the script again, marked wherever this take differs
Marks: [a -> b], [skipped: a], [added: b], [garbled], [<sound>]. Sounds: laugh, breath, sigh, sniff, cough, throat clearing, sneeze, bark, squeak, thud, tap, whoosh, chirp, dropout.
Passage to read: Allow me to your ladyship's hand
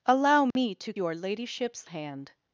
Allow me [dropout] to your ladyship's hand